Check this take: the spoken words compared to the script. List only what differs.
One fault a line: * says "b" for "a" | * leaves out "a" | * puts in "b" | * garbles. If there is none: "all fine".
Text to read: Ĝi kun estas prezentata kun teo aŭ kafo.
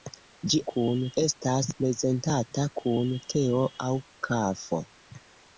all fine